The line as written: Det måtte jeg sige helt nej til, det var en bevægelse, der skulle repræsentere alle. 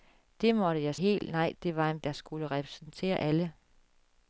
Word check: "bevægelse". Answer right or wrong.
wrong